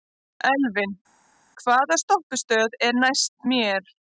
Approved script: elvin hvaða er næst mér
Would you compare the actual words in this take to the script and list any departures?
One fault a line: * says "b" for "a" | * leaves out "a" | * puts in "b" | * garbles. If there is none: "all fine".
* puts in "stoppistöð"